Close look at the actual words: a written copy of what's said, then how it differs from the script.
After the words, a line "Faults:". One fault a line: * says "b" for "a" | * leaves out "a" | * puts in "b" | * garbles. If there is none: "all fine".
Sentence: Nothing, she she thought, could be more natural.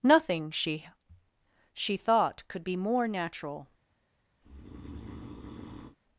Nothing, she she thought, could be more natural.
Faults:
all fine